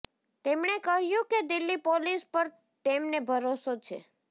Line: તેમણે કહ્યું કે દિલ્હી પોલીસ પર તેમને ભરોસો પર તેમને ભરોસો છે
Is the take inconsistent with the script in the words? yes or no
yes